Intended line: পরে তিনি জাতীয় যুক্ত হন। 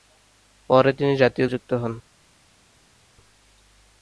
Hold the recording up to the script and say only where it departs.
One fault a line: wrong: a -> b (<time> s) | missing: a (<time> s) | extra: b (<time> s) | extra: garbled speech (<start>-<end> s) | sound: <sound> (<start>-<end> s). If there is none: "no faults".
no faults